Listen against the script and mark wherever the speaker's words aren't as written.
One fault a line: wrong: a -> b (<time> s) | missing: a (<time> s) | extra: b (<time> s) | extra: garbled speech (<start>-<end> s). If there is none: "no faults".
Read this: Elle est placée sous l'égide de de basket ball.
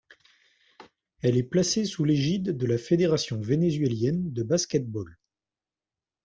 extra: la Fédération vénézuélienne (2.6 s)